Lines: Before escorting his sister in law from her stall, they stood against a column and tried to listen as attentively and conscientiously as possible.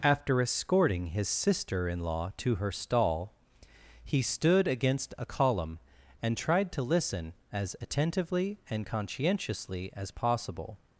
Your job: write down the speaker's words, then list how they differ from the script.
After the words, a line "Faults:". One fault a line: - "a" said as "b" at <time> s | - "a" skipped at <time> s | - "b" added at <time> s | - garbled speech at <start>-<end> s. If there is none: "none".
After escorting his sister in law to her stall, he stood against a column and tried to listen as attentively and conscientiously as possible.
Faults:
- "Before" said as "After" at 0.0 s
- "from" said as "to" at 2.4 s
- "they" said as "he" at 4.0 s